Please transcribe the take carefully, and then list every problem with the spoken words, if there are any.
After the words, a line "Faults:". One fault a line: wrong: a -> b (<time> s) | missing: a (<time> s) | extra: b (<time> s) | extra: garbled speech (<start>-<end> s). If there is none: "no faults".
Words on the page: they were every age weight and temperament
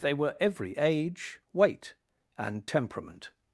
they were every age weight and temperament
Faults:
no faults